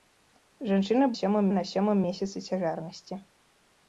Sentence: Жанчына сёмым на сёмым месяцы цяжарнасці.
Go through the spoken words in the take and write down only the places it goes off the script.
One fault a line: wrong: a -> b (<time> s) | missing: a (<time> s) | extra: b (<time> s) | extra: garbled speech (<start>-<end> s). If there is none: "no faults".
no faults